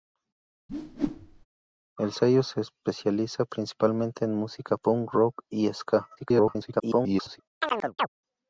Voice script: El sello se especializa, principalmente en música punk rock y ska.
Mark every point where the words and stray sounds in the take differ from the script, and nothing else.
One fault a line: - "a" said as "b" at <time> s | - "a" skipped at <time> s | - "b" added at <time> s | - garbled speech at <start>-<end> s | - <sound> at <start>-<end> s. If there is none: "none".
- whoosh at 0.7-1.5 s
- garbled speech at 6.2-7.4 s
- chirp at 7.6-8.1 s